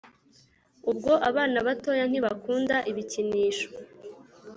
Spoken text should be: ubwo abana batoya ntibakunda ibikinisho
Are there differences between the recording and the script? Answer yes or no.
no